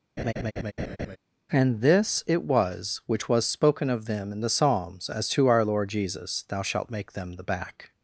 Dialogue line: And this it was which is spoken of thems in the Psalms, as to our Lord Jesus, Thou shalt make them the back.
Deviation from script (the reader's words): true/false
true